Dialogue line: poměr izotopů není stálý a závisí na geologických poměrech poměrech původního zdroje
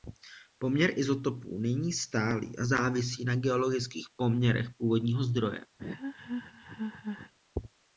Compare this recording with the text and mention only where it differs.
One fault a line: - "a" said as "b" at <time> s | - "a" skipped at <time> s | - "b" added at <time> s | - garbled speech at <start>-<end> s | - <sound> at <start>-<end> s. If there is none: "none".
- "poměrech" skipped at 4.7 s
- laugh at 5.8-7.3 s